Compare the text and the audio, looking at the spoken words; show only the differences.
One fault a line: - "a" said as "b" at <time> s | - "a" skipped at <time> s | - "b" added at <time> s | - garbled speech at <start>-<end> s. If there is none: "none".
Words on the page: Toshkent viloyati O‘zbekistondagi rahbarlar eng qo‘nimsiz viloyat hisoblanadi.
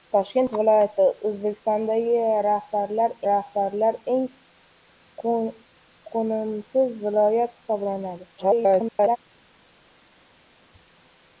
- "rahbarlar" added at 3.3 s
- garbled speech at 8.4-9.2 s